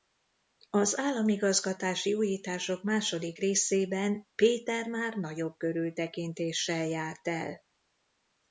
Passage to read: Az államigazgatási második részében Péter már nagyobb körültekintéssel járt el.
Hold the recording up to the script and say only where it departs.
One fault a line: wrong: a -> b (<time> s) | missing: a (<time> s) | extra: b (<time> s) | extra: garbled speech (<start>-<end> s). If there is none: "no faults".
extra: újítások (2.1 s)